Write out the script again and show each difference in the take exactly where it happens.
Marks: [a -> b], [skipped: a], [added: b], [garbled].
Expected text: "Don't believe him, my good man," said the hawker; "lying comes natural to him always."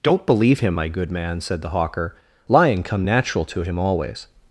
"Don't believe him, my good man," said the hawker; "lying [comes -> come] natural to him always."